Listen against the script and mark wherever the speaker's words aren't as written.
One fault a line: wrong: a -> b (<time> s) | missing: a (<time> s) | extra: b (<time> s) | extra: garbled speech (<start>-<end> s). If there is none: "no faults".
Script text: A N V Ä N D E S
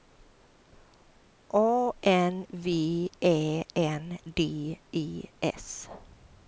no faults